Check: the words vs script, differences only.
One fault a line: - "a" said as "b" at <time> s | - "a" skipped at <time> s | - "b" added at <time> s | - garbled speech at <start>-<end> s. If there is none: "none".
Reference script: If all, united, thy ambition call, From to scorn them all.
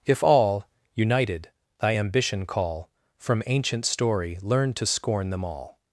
- "ancient story learn" added at 3.5 s